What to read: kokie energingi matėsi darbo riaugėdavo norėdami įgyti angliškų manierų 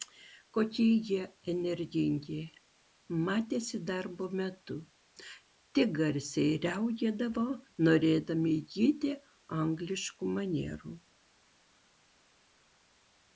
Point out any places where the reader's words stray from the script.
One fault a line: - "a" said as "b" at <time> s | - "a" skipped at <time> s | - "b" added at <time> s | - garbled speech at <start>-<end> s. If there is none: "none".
- "jie" added at 1.1 s
- "metu tik garsiai" added at 4.4 s